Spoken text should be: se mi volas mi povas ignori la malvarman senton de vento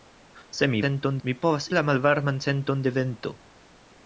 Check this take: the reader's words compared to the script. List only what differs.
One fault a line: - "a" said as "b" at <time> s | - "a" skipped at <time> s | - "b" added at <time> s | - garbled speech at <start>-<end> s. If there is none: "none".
- "volas" said as "senton" at 0.8 s
- "ignori" skipped at 1.7 s